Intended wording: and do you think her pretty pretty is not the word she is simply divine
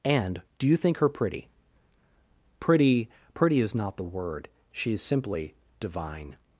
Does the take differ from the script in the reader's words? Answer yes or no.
yes